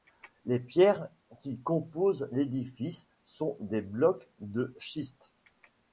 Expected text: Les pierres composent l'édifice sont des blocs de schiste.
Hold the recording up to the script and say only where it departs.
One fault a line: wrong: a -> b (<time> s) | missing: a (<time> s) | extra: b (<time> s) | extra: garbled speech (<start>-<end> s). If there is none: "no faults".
extra: qui (1.4 s)